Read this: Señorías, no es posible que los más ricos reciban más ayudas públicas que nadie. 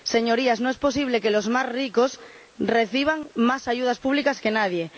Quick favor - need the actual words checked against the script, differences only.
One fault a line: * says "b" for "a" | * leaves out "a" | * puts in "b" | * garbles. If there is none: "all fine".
all fine